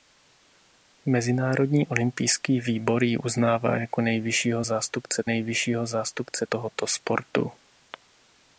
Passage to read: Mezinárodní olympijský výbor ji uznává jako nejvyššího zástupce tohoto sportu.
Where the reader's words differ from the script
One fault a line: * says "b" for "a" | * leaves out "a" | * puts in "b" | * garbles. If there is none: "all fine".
* puts in "nejvyššího zástupce"